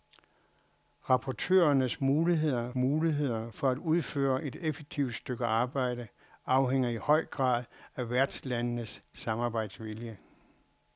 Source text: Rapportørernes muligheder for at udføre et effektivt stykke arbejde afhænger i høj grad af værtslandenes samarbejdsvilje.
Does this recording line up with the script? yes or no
no